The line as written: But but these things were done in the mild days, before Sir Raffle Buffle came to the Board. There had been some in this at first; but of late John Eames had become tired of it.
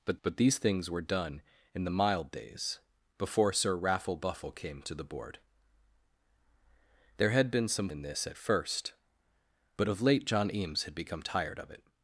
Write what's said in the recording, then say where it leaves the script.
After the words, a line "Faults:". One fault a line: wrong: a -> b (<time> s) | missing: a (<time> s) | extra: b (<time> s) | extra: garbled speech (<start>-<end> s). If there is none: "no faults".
But but these things were done in the mild days, before Sir Raffle Buffle came to the Board. There had been some in this at first; but of late John Eames had become tired of it.
Faults:
no faults